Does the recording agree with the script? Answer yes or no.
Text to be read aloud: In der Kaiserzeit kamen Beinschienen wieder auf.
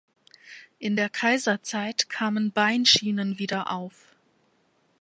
yes